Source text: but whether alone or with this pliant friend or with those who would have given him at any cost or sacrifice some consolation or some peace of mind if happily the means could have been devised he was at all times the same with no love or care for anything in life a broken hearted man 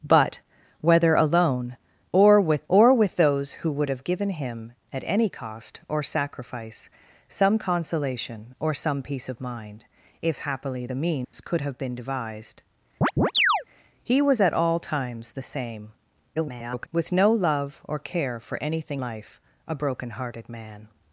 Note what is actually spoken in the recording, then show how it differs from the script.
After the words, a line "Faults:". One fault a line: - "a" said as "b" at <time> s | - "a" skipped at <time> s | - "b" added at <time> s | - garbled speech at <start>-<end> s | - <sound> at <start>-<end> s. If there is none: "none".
but whether alone or with or with those who would have given him at any cost or sacrifice some consolation or some peace of mind if happily the means could have been devised he was at all times the same [garbled] with no love or care for anything life a broken hearted man
Faults:
- "this pliant friend" skipped at 2.6 s
- dropout at 11.2-11.3 s
- chirp at 13.0-13.6 s
- garbled speech at 16.3-16.9 s
- "in" skipped at 19.0 s